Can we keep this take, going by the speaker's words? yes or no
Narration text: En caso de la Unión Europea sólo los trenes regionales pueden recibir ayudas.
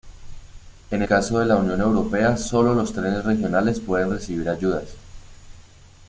yes